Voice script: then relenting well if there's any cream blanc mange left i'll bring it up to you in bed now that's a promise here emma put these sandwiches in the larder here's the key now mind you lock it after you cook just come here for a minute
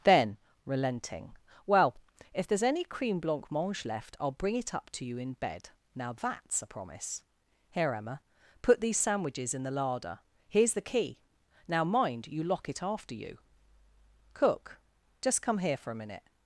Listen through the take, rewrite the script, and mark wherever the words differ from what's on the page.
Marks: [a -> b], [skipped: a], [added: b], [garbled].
then relenting well if there's any cream blanc mange left i'll bring it up to you in bed now that's a promise here emma put these sandwiches in the larder here's the key now mind you lock it after you cook just come here for a minute